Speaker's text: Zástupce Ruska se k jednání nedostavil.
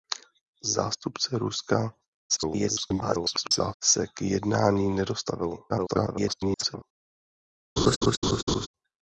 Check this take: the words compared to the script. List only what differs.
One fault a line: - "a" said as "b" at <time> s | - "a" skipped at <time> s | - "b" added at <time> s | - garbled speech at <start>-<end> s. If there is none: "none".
- garbled speech at 2.3-3.7 s
- garbled speech at 5.7-6.8 s